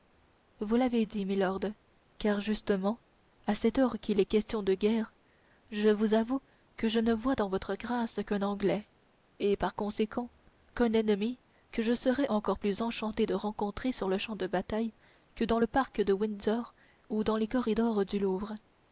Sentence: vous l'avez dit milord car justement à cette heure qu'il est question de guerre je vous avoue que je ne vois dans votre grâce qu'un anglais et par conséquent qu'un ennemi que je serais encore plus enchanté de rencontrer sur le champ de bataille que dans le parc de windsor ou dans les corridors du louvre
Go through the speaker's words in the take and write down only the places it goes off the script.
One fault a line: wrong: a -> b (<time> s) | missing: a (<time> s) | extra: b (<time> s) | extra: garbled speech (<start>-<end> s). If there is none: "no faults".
no faults